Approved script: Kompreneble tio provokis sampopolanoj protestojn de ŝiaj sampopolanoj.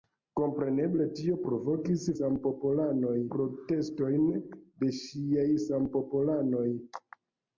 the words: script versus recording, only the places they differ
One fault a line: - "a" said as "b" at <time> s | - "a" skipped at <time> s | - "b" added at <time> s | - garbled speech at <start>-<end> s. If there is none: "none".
none